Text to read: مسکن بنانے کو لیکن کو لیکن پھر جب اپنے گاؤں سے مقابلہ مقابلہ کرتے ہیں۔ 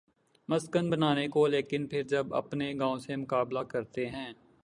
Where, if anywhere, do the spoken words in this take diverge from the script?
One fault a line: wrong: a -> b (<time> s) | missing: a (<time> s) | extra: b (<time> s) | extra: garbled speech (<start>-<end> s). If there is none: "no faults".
missing: کو لیکن (1.9 s)
missing: مقابلہ (3.6 s)